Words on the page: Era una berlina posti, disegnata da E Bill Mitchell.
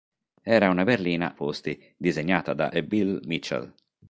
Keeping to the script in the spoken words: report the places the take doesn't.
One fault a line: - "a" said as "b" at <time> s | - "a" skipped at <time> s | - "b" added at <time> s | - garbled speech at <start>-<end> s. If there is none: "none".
none